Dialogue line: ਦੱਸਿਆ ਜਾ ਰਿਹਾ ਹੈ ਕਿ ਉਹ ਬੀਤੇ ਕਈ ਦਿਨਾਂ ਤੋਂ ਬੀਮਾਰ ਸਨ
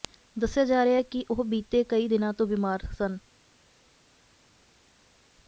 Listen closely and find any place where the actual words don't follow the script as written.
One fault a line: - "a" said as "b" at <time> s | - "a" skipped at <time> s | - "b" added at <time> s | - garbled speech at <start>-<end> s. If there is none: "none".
none